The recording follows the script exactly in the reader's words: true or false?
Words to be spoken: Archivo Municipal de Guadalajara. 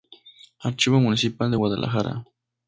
true